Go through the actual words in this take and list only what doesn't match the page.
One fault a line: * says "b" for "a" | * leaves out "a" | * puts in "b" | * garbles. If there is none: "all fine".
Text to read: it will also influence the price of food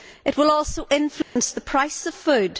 all fine